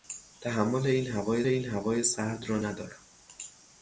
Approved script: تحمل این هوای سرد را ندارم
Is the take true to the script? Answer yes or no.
no